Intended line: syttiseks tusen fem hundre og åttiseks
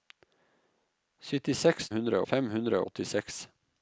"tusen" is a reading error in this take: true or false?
true